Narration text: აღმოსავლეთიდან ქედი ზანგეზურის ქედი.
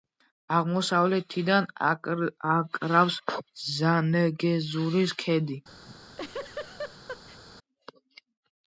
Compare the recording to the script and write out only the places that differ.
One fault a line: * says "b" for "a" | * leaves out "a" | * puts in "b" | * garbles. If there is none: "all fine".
* says "აკრავს" for "ქედი"